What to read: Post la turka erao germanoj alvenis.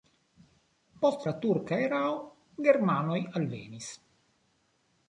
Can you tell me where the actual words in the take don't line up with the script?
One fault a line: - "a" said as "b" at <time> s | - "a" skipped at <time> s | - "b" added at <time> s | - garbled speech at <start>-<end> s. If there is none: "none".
none